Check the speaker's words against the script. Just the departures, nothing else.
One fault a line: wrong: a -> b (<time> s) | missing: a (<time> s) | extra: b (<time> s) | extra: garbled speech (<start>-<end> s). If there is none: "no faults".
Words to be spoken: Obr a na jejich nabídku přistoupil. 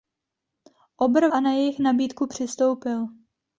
no faults